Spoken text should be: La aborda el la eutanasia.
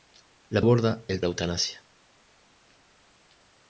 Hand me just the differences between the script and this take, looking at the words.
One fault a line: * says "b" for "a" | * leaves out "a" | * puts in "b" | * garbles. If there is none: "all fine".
all fine